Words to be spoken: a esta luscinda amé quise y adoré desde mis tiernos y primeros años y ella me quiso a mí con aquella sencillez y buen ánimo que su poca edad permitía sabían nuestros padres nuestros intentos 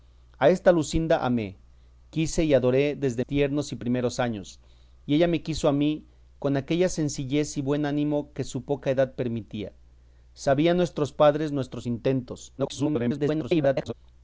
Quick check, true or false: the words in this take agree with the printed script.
false